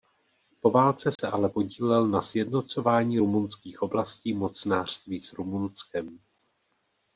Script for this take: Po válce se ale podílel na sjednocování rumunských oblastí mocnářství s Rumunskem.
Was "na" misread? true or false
false